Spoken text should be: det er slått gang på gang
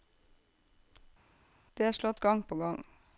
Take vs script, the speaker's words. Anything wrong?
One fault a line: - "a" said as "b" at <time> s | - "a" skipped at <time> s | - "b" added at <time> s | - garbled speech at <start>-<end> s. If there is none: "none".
none